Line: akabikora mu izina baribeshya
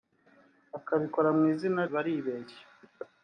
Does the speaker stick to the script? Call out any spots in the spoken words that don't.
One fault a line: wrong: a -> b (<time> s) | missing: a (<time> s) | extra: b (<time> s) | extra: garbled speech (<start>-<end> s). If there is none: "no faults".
no faults